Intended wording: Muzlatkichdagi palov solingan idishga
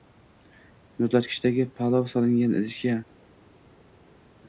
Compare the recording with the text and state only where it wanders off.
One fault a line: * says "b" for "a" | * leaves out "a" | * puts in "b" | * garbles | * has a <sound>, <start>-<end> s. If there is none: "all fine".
all fine